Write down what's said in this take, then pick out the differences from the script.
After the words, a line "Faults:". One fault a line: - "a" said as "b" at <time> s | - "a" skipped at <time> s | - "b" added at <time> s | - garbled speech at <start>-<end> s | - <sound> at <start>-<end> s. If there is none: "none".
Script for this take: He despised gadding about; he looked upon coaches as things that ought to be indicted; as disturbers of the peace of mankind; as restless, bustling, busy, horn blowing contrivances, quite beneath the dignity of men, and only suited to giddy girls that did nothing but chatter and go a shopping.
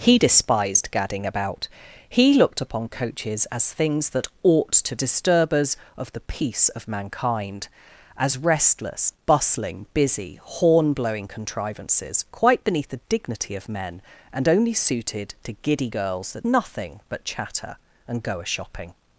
He despised gadding about; he looked upon coaches as things that ought to disturbers of the peace of mankind; as restless, bustling, busy, horn blowing contrivances, quite beneath the dignity of men, and only suited to giddy girls that nothing but chatter and go a shopping.
Faults:
- "be indicted as" skipped at 5.0 s
- "did" skipped at 16.4 s